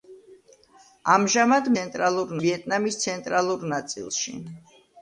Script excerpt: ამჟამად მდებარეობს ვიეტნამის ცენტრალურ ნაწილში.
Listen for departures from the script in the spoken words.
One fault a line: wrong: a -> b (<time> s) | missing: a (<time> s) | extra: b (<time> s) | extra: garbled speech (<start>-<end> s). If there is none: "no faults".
wrong: მდებარეობს -> ცენტრალურ (1.8 s)